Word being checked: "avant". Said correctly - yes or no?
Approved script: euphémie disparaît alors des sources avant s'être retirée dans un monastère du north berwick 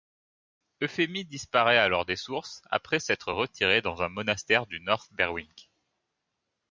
no